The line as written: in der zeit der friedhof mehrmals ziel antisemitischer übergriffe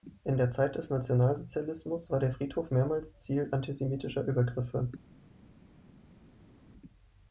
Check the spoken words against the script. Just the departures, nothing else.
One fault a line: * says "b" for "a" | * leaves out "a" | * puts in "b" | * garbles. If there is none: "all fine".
* puts in "des nationalsozialismus war"